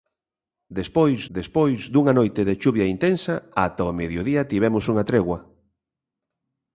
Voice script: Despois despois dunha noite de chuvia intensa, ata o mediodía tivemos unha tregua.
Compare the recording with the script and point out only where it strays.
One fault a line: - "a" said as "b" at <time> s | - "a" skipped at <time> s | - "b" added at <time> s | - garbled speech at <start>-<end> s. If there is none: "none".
none